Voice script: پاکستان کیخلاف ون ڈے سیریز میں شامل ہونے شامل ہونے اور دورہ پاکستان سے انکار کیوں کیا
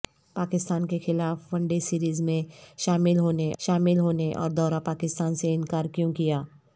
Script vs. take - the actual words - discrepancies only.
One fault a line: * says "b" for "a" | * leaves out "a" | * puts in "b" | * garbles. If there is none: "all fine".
all fine